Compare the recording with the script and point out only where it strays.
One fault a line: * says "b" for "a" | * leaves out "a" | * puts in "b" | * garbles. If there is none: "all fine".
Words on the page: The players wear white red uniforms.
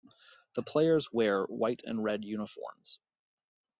* puts in "and"